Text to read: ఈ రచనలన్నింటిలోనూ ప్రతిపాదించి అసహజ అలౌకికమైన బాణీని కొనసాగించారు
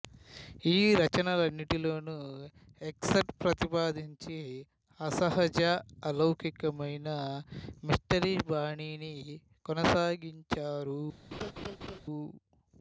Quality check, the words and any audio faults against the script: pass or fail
fail